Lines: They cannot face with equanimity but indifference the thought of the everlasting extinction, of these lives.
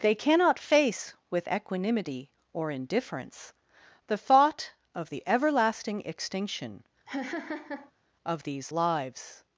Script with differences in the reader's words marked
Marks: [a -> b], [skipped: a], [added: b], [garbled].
They cannot face with equanimity [but -> or] indifference the thought of the everlasting extinction, of these lives.